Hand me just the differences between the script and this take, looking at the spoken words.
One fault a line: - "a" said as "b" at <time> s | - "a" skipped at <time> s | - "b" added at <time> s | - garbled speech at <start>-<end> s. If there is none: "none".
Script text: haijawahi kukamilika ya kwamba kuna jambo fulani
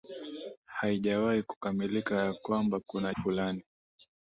- "jambo" skipped at 3.1 s